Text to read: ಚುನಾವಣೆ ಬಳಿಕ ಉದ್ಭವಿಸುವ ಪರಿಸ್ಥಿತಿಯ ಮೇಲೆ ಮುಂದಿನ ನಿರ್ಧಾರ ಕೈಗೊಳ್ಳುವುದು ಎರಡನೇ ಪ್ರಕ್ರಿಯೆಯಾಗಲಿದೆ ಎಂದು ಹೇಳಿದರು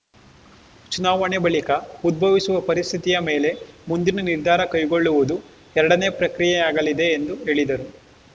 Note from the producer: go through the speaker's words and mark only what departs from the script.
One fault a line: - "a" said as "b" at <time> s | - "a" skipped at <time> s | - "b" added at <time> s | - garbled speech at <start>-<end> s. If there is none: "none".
none